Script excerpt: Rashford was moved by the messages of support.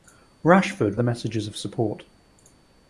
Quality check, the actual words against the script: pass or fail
fail